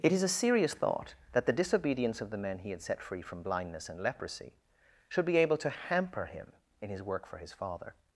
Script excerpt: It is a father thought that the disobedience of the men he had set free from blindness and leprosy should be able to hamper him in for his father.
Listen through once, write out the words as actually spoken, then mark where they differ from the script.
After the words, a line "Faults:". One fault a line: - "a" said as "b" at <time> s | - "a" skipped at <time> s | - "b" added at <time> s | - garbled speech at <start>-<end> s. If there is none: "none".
It is a serious thought that the disobedience of the men he had set free from blindness and leprosy should be able to hamper him in his work for his father.
Faults:
- "father" said as "serious" at 0.3 s
- "his work" added at 6.9 s